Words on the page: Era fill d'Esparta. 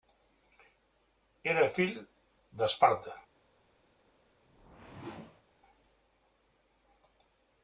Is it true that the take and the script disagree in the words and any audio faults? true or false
true